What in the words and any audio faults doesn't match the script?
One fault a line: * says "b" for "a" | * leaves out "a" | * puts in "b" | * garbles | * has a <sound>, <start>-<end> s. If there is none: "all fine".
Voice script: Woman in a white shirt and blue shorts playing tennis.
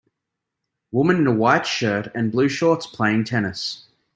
all fine